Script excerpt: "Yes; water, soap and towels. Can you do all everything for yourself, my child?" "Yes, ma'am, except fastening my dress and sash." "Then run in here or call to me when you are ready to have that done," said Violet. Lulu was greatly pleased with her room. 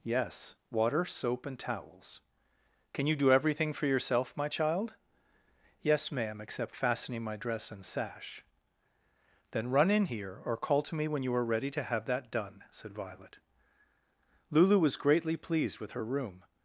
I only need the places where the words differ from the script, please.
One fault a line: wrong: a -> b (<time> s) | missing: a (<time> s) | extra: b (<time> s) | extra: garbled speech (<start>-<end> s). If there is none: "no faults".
missing: all (3.3 s)